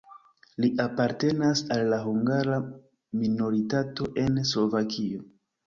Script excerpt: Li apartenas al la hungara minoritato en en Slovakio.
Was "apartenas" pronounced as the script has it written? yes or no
yes